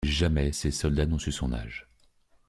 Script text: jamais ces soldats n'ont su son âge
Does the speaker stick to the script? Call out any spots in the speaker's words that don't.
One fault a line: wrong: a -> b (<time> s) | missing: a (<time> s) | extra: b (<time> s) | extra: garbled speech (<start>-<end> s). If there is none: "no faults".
no faults